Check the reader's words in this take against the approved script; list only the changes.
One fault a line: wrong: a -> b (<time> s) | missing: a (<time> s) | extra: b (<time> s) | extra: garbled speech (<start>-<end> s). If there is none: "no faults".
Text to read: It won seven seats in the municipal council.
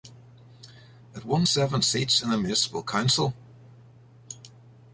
no faults